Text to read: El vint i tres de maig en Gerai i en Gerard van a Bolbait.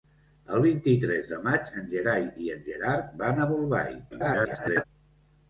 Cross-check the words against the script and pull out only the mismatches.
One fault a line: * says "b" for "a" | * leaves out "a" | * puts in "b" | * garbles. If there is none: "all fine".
* garbles